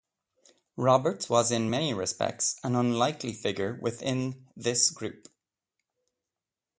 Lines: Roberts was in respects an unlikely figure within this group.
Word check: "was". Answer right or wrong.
right